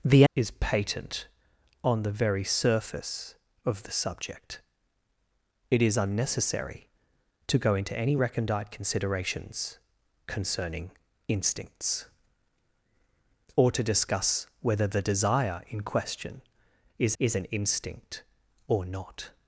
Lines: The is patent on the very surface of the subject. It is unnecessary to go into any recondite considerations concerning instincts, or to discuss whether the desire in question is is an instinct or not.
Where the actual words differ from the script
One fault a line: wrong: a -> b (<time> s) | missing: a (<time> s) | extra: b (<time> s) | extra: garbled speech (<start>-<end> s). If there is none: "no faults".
no faults